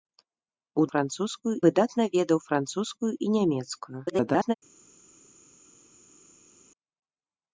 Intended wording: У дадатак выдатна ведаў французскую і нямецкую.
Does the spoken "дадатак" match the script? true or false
false